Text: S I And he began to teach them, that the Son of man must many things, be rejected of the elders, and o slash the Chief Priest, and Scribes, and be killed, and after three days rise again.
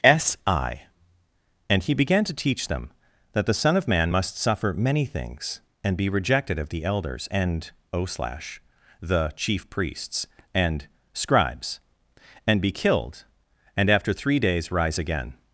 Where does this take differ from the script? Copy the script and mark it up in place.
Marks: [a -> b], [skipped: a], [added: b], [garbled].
S I And he began to teach them, that the Son of man must [added: suffer] many things, [added: and] be rejected of the elders, and o slash the Chief [Priest, -> Priests] and Scribes, and be killed, and after three days rise again.